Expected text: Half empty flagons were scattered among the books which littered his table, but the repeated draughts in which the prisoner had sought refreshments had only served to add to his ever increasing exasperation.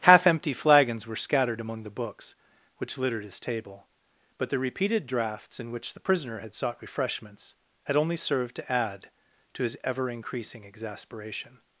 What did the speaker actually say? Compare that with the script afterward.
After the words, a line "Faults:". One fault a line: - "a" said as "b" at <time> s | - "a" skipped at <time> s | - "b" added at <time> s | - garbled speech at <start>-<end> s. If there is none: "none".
Half empty flagons were scattered among the books which littered his table, but the repeated draughts in which the prisoner had sought refreshments had only served to add to his ever increasing exasperation.
Faults:
none